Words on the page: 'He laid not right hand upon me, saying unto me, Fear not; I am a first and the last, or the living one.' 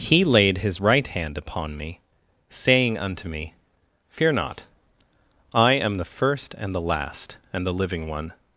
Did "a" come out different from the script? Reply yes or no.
yes